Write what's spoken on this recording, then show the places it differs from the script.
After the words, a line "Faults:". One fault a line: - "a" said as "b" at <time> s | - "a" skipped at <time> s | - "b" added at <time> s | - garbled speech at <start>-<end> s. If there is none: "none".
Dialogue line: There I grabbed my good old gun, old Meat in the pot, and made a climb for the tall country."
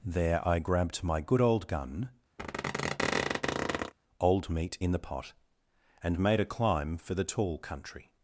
There I grabbed my good old gun, old Meat in the pot, and made a climb for the tall country."
Faults:
none